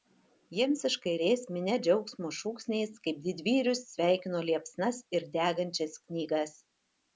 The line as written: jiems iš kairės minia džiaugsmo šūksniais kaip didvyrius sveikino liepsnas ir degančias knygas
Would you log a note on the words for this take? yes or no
no